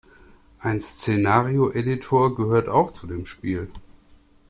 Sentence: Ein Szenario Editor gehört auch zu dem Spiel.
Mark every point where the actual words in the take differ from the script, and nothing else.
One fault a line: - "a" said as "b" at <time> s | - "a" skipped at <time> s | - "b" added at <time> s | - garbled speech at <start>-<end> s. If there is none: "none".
none